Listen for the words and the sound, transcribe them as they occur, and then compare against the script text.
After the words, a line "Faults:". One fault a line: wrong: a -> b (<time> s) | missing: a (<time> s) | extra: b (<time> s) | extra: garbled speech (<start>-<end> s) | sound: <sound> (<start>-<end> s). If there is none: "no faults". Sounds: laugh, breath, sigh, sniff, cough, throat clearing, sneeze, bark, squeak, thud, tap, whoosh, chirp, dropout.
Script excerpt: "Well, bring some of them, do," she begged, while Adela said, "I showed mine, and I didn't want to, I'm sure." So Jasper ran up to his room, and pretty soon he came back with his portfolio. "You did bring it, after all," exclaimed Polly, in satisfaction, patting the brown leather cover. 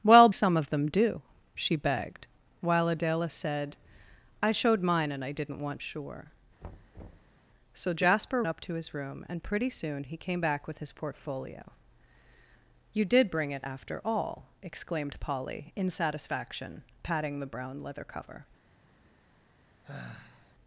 "Well, some of them, do," she begged, while Adela said, "I showed mine, and I didn't want sure." So Jasper up to his room, and pretty soon he came back with his portfolio. "You did bring it, after all," exclaimed Polly, in satisfaction, patting the brown leather cover.
Faults:
missing: bring (0.3 s)
missing: to I'm (5.8 s)
sound: thud (6.6-7.4 s)
missing: ran (8.4 s)
sound: sigh (19.8-20.5 s)